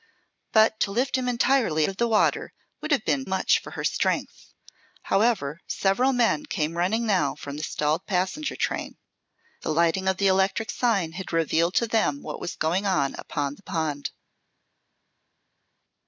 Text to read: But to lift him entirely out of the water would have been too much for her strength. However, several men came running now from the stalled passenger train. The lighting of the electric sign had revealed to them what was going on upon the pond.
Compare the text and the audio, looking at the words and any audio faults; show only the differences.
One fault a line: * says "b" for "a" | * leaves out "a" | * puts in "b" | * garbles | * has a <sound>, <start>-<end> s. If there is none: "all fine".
* leaves out "out"
* leaves out "too"